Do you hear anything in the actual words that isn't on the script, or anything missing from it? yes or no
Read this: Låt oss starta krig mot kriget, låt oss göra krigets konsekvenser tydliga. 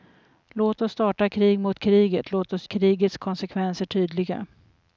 yes